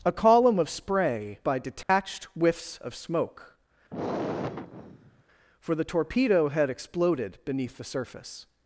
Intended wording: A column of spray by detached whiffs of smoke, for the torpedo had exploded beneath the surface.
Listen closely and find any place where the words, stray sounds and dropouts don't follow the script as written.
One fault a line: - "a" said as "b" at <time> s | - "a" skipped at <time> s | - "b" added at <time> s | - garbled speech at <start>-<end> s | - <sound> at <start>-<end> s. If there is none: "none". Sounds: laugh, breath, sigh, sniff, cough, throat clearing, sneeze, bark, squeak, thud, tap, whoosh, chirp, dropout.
- dropout at 1.8-1.9 s
- sigh at 3.9-5.2 s